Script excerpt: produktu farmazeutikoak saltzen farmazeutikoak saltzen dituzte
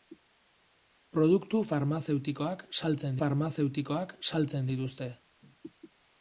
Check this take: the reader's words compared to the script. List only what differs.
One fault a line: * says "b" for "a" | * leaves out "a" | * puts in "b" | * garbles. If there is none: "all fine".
all fine